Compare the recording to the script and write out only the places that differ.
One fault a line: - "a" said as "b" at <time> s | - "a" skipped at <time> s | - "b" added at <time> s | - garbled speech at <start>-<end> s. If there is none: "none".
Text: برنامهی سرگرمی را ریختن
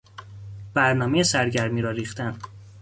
none